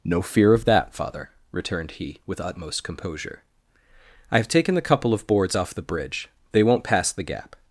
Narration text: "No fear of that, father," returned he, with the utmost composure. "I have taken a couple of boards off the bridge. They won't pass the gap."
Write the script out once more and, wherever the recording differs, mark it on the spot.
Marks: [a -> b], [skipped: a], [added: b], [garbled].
"No fear of that, father," returned he, with [skipped: the] utmost composure. "I have taken [a -> the] couple of boards off the bridge. They won't pass the gap."